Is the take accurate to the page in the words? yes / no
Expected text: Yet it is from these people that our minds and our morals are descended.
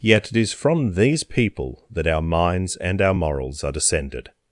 yes